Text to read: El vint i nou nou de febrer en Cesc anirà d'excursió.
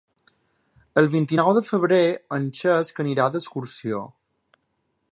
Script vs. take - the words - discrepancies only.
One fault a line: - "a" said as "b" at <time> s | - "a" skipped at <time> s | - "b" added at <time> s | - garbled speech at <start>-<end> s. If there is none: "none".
- "nou" skipped at 1.5 s